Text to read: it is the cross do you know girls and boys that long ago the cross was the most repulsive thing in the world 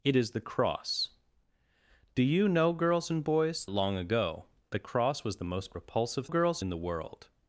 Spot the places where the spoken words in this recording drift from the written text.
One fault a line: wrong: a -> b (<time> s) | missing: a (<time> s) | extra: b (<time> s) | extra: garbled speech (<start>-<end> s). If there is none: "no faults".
missing: that (3.6 s)
wrong: thing -> girls (6.3 s)